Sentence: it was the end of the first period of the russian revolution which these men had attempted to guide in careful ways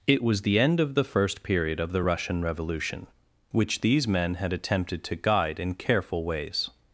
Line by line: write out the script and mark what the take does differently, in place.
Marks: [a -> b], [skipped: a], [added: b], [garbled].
it was the end of the first period of the russian revolution which these men had attempted to guide in careful ways